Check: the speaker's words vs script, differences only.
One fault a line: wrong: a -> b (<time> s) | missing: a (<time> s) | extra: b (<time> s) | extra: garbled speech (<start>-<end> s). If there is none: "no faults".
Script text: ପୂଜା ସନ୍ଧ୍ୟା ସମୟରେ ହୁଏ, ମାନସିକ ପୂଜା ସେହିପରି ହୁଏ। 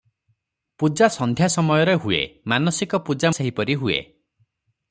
no faults